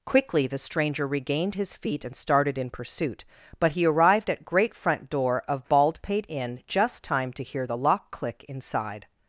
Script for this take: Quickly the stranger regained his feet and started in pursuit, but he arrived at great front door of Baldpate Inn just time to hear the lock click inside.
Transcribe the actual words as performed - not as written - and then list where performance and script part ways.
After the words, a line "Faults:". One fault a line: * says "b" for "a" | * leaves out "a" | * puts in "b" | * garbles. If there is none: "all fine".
Quickly the stranger regained his feet and started in pursuit, but he arrived at great front door of Baldpate Inn just time to hear the lock click inside.
Faults:
all fine